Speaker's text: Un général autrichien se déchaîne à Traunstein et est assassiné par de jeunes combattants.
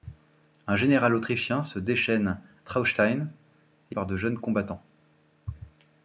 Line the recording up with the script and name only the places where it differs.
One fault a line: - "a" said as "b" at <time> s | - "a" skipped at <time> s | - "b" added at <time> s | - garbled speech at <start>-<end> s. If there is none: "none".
- "à" skipped at 2.4 s
- "est assassiné" skipped at 4.0 s